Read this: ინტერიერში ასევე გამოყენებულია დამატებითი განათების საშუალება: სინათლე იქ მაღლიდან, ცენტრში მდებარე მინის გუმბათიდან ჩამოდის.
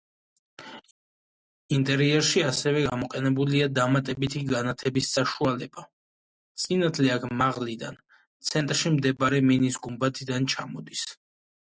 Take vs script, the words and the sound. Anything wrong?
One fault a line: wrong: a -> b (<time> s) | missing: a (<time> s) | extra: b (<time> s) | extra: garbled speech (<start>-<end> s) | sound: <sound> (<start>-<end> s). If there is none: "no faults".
wrong: იქ -> აქ (7.2 s)